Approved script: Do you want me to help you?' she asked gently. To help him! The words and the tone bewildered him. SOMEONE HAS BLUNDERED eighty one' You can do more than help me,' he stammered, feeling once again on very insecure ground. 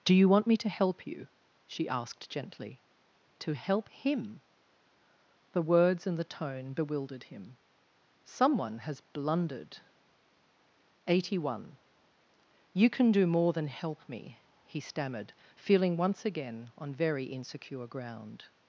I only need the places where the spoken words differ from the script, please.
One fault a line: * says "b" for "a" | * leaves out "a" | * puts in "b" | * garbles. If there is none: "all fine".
all fine